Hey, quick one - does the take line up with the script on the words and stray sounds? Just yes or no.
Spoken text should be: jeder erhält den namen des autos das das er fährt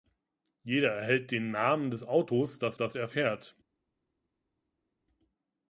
yes